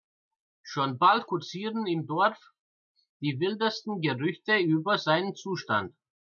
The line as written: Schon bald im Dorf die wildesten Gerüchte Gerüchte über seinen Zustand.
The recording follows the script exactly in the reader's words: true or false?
false